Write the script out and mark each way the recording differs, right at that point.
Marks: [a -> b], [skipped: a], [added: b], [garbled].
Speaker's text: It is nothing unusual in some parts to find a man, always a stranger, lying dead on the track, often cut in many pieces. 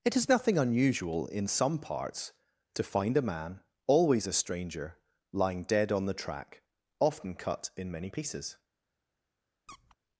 It is nothing unusual in some parts to find a man, always a stranger, lying dead on the track, often cut in many pieces.